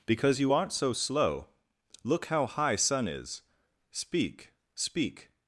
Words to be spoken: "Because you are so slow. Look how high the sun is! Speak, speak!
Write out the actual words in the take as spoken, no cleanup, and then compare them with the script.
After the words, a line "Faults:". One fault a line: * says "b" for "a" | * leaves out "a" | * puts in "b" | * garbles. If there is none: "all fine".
"Because you aren't so slow. Look how high sun is! Speak, speak!
Faults:
* says "aren't" for "are"
* leaves out "the"